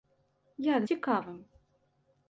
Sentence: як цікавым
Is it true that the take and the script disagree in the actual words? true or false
false